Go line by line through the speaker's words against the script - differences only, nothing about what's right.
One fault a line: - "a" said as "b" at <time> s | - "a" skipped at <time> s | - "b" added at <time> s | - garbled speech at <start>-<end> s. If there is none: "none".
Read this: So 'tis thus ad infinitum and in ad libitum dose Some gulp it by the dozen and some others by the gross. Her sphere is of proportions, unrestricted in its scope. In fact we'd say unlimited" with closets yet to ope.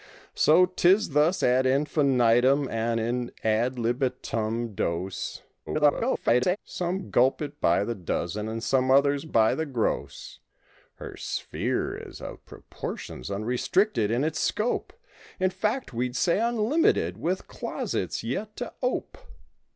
- garbled speech at 5.7-6.6 s